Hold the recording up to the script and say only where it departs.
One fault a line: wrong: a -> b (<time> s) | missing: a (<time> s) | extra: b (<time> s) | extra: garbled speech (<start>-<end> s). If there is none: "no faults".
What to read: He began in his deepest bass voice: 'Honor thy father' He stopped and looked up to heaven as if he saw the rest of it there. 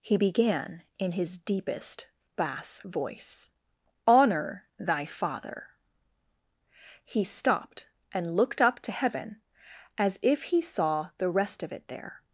no faults